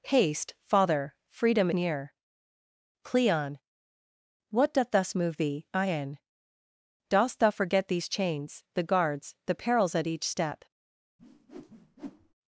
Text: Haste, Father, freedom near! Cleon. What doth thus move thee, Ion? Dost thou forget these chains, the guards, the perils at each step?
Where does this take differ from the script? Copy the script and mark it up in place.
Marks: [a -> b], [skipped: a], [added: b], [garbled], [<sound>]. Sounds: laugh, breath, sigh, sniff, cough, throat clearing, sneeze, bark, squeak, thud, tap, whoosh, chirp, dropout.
Haste, Father, freedom near! Cleon. What doth thus move thee, Ion? Dost thou forget these chains, the guards, the perils at each step? [whoosh]